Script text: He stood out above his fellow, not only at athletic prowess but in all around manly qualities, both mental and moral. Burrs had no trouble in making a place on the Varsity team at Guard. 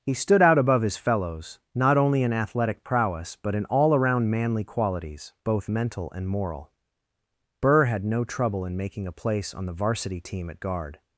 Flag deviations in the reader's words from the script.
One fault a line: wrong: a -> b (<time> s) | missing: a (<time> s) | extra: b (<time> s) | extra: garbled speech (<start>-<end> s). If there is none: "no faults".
wrong: fellow -> fellows (1.0 s)
wrong: at -> in (2.2 s)
wrong: Burrs -> Burr (7.6 s)